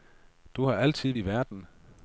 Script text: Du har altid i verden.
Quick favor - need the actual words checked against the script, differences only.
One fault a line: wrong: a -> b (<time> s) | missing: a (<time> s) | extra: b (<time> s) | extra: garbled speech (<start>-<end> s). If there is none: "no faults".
no faults